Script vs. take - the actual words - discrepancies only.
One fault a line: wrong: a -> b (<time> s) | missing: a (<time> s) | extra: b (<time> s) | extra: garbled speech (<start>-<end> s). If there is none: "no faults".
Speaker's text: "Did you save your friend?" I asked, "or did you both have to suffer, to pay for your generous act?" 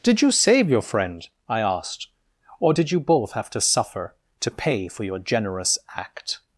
no faults